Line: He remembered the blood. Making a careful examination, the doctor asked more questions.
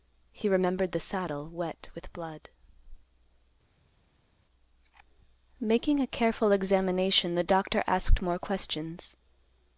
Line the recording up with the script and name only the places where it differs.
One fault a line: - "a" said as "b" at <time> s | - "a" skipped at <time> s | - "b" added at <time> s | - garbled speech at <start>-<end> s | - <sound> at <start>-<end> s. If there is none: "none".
- "saddle wet with" added at 1.0 s